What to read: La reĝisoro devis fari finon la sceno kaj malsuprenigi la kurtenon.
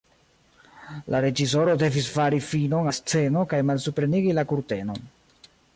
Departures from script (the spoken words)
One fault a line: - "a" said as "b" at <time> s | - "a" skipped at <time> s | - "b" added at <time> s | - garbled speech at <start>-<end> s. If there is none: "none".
none